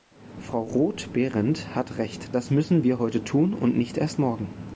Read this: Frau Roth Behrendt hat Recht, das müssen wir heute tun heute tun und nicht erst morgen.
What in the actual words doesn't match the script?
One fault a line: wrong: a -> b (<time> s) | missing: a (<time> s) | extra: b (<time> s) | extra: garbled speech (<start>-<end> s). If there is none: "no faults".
missing: heute tun (3.5 s)